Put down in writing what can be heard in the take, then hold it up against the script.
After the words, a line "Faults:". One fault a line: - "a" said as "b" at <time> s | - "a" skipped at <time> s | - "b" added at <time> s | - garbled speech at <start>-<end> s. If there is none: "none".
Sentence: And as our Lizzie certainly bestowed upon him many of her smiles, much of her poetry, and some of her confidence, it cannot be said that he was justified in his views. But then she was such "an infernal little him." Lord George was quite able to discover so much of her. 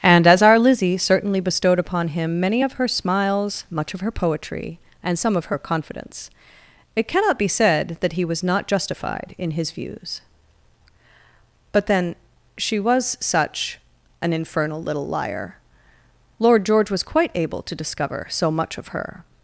And as our Lizzie certainly bestowed upon him many of her smiles, much of her poetry, and some of her confidence, it cannot be said that he was not justified in his views. But then she was such "an infernal little liar." Lord George was quite able to discover so much of her.
Faults:
- "not" added at 8.4 s
- "him" said as "liar" at 15.1 s